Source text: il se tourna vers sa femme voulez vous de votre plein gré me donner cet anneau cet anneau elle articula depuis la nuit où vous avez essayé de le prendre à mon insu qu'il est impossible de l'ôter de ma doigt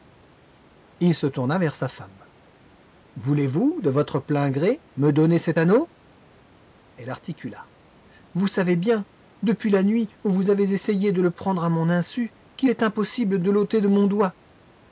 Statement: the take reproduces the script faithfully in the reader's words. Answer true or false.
false